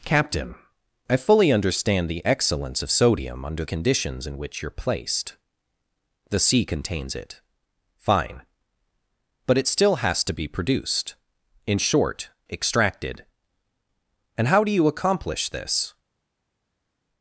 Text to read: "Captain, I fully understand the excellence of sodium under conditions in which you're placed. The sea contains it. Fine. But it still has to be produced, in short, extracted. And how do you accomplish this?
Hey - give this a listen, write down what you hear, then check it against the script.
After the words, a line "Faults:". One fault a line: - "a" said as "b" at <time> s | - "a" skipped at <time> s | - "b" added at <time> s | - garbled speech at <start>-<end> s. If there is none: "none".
"Captain, I fully understand the excellence of sodium under conditions in which you're placed. The sea contains it. Fine. But it still has to be produced, in short, extracted. And how do you accomplish this?
Faults:
none